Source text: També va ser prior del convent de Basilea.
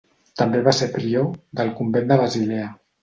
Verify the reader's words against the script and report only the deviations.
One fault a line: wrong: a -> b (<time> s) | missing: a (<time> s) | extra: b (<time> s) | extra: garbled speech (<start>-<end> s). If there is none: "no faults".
no faults